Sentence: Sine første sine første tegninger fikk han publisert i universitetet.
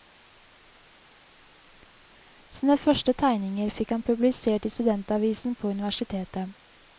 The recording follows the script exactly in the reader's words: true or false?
false